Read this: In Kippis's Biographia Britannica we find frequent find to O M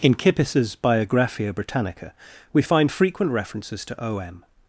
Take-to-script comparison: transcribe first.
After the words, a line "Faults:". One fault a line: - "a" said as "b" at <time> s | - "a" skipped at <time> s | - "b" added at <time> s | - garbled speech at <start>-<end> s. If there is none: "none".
In Kippis's Biographia Britannica we find frequent references to O M
Faults:
- "find" said as "references" at 3.3 s